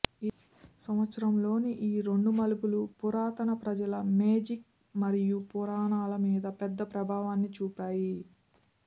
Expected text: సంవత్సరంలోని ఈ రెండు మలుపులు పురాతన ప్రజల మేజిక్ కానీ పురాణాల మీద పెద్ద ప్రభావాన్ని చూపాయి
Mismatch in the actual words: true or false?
true